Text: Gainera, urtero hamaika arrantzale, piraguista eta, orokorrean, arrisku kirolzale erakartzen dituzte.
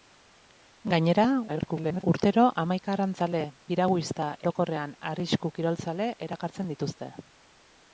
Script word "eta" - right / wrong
wrong